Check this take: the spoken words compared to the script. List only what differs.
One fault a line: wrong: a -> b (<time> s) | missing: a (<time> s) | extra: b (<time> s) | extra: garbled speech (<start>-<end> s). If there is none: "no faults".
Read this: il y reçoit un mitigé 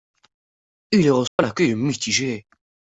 extra: accueil (1.5 s)